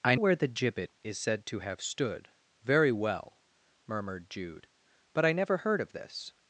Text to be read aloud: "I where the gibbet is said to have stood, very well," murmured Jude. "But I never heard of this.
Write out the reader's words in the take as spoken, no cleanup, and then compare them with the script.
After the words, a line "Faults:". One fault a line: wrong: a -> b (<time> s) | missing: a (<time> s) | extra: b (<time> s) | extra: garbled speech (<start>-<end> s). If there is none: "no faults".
"I where the gibbet is said to have stood, very well," murmured Jude. "But I never heard of this.
Faults:
no faults